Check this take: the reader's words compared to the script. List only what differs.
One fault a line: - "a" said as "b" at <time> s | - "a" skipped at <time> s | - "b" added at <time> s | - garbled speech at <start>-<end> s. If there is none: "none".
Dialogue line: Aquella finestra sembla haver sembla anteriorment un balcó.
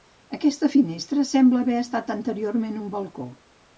- "Aquella" said as "Aquesta" at 0.3 s
- "sembla" said as "estat" at 1.8 s